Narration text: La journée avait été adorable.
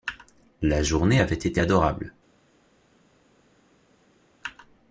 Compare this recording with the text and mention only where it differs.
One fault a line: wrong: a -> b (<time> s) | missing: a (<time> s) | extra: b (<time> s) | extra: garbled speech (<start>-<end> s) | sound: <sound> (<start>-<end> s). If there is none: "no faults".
no faults